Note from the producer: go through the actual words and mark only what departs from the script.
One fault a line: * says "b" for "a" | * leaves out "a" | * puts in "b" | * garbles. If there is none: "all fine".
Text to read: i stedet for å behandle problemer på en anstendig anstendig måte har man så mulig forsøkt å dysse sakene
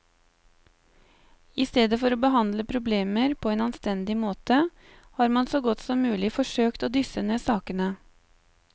* leaves out "anstendig"
* puts in "godt som"
* puts in "ned"